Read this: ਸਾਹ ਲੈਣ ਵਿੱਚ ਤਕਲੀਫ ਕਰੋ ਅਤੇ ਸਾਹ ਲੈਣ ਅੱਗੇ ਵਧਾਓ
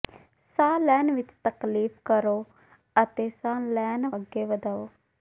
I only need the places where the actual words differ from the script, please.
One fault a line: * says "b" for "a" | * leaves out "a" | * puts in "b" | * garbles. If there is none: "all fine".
all fine